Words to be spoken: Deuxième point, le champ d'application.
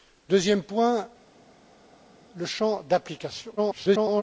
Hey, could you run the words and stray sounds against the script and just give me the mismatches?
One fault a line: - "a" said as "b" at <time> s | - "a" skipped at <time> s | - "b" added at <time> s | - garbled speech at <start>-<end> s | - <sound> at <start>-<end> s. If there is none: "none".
- garbled speech at 3.6-4.2 s